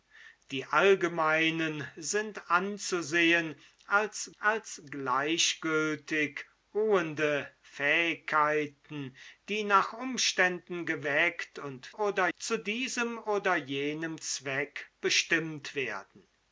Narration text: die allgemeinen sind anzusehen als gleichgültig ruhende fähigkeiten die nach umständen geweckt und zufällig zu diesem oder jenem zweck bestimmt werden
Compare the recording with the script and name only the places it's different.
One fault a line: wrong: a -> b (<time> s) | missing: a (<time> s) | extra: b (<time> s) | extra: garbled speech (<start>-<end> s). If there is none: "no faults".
extra: als (4.4 s)
wrong: zufällig -> oder (11.9 s)